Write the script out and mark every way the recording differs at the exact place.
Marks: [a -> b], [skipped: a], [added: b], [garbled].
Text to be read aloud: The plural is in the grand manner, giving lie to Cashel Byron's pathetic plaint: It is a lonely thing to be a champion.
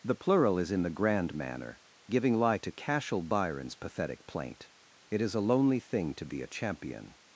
The plural is in the grand manner, giving lie to Cashel Byron's pathetic plaint: It is a lonely thing to be a champion.